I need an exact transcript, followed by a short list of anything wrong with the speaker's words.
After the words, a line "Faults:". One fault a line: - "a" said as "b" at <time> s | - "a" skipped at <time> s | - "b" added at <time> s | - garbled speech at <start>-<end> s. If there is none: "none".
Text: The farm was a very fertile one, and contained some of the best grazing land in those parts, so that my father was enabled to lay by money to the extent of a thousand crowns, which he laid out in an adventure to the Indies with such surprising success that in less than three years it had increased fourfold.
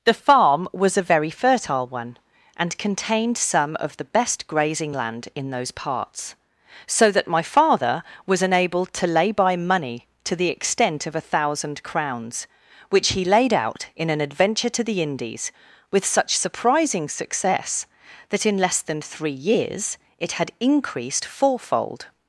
The farm was a very fertile one, and contained some of the best grazing land in those parts, so that my father was enabled to lay by money to the extent of a thousand crowns, which he laid out in an adventure to the Indies with such surprising success that in less than three years it had increased fourfold.
Faults:
none